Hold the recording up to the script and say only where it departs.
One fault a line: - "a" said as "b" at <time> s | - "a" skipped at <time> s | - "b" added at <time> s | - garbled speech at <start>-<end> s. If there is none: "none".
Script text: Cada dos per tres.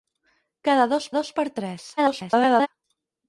- "dos" added at 1.2 s
- garbled speech at 2.0-2.7 s